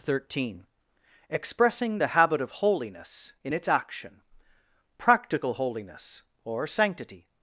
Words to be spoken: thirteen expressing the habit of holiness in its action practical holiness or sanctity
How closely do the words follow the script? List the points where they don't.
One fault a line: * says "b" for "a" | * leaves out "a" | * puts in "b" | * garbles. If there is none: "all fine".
all fine